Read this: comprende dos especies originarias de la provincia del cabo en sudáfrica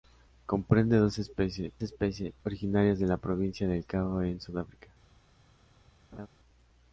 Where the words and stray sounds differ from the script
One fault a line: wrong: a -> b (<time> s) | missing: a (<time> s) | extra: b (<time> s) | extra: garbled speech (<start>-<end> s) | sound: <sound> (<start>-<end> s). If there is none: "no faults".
extra: especies (1.8 s)
sound: laugh (6.1-6.3 s)